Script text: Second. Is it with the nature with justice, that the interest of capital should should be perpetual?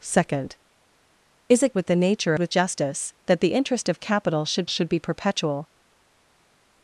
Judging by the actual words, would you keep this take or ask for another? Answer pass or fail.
pass